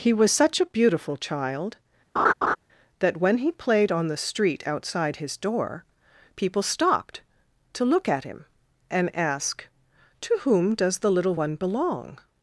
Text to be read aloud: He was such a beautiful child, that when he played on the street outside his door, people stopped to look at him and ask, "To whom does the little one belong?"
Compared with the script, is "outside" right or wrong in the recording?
right